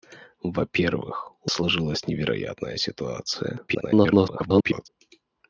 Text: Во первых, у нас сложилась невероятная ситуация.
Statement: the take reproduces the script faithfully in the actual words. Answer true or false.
false